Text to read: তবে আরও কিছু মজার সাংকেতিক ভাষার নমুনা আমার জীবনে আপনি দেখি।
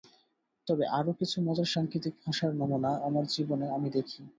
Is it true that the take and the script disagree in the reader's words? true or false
true